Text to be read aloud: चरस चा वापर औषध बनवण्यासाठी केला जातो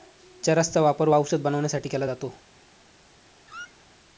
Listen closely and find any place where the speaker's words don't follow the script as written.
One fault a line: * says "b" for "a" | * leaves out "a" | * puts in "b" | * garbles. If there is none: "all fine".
all fine